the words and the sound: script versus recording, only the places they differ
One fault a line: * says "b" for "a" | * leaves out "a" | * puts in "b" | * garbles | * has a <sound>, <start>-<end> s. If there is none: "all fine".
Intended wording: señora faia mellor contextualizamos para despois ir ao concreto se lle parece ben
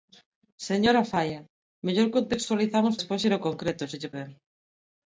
* leaves out "para"
* leaves out "parece"